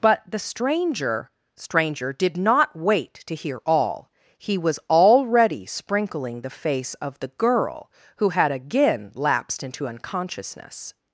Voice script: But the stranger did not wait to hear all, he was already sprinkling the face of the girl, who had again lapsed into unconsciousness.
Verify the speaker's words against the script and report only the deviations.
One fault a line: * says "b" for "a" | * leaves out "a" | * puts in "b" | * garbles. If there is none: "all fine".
* puts in "stranger"